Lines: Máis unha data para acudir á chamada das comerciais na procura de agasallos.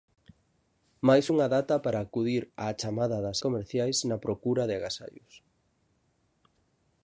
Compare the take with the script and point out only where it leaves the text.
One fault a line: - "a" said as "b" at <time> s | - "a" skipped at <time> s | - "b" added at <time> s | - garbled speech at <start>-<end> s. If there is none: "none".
none